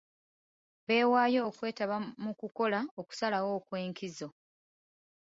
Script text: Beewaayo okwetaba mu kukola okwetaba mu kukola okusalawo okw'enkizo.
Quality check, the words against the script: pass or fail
fail